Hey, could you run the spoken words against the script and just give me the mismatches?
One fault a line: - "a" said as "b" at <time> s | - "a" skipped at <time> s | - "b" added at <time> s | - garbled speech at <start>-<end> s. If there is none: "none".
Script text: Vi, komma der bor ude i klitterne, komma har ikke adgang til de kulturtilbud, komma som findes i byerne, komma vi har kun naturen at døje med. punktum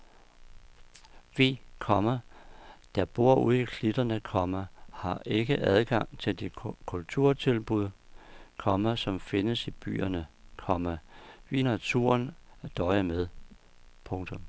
- "har kun" skipped at 11.6 s